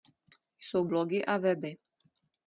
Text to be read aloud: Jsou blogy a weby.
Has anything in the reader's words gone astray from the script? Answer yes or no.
no